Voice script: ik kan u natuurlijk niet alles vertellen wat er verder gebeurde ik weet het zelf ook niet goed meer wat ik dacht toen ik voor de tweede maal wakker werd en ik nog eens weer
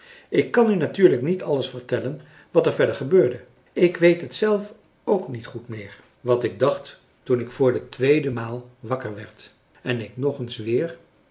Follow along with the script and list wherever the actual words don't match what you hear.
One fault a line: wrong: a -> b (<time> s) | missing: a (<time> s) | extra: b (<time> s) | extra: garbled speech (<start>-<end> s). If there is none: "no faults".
no faults